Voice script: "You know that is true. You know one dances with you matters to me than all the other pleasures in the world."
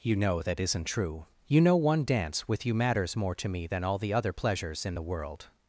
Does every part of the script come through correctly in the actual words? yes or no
no